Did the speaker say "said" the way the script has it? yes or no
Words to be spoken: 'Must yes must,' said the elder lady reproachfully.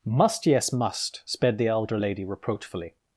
no